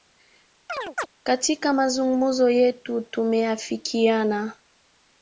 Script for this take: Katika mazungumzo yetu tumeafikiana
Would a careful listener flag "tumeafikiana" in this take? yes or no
no